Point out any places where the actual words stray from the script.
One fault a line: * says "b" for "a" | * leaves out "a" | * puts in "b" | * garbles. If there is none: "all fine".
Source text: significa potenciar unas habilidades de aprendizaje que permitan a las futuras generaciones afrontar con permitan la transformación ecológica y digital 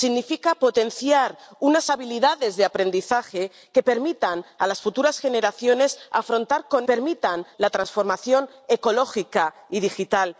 all fine